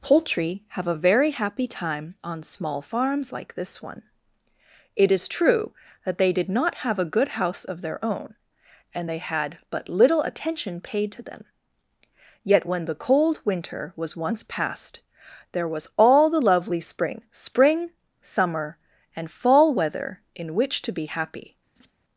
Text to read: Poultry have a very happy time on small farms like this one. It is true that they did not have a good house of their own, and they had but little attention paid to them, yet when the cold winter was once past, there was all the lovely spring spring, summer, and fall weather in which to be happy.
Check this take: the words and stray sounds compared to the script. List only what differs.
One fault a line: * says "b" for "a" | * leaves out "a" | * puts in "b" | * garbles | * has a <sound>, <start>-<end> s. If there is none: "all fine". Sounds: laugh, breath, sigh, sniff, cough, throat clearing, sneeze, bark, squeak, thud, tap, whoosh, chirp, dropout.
* has a laugh, 21.8-21.9 s